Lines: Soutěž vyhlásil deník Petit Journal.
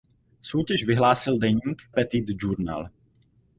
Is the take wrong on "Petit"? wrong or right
right